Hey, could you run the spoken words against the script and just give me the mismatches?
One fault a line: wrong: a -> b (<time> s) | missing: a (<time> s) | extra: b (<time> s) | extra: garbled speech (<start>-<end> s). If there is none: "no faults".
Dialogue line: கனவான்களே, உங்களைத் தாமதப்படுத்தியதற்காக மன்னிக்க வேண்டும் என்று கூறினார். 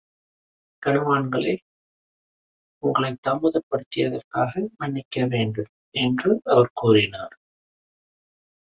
extra: அவர் (6.4 s)